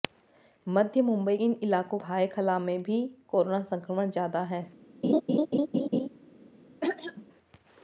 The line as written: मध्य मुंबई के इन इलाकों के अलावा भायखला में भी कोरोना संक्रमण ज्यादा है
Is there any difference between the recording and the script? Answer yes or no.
yes